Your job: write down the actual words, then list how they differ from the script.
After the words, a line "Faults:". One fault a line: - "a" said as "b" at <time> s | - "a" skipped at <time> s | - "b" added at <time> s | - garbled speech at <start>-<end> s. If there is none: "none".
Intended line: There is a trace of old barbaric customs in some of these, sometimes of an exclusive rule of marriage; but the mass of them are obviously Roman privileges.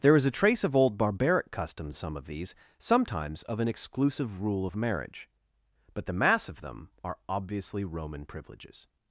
There is a trace of old barbaric customs some of these, sometimes of an exclusive rule of marriage; but the mass of them are obviously Roman privileges.
Faults:
- "in" skipped at 1.9 s